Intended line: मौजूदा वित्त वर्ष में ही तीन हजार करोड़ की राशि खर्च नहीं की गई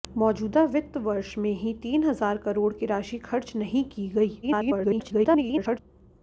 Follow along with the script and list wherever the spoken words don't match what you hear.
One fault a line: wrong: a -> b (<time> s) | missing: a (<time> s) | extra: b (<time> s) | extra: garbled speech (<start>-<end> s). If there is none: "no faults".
extra: garbled speech (4.4-5.8 s)